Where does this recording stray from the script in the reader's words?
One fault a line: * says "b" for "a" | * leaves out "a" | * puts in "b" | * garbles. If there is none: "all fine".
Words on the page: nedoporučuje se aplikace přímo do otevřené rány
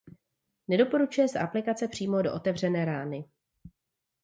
all fine